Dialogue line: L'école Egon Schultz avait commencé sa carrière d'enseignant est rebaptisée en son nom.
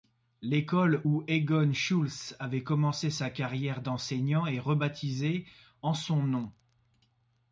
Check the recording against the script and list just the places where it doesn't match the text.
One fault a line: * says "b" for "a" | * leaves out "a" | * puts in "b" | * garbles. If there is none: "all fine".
* puts in "où"